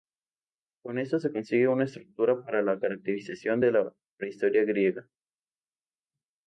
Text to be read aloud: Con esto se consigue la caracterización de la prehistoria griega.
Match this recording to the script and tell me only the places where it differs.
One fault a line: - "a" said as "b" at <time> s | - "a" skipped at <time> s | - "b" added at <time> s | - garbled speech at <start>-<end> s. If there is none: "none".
- "una estructura para" added at 1.7 s